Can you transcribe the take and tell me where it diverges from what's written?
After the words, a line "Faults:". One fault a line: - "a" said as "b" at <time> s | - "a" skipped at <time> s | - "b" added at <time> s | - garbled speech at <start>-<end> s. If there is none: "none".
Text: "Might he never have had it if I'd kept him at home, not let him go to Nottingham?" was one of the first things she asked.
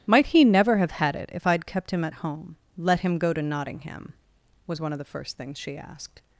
"Might he never have had it if I'd kept him at home, let him go to Nottingham?" was one of the first things she asked.
Faults:
- "not" skipped at 2.6 s